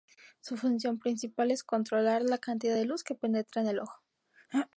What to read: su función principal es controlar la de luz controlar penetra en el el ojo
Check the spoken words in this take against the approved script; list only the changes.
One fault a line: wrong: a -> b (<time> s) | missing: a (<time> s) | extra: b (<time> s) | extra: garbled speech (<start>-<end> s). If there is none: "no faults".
extra: cantidad (2.4 s)
wrong: controlar -> que (3.0 s)
missing: el (3.8 s)